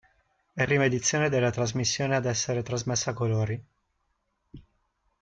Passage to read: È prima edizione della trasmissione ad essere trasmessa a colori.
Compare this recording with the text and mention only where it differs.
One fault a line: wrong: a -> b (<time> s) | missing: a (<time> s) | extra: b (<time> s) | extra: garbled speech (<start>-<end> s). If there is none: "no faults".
no faults